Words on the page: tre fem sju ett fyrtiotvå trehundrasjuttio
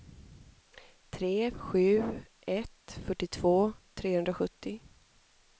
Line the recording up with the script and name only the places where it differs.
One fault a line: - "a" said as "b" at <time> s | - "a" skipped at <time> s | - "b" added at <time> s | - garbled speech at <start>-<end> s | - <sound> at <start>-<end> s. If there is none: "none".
- "fem" skipped at 1.5 s